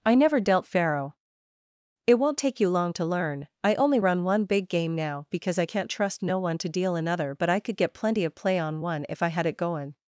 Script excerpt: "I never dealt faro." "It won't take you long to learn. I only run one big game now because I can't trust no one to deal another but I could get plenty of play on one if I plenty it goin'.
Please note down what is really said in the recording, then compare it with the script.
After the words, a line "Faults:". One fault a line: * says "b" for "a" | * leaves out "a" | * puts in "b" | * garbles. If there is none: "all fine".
"I never dealt faro." "It won't take you long to learn. I only run one big game now because I can't trust no one to deal another but I could get plenty of play on one if I had it goin'.
Faults:
* says "had" for "plenty"